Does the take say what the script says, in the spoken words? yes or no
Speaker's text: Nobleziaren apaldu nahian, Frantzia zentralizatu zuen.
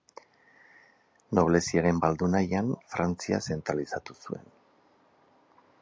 yes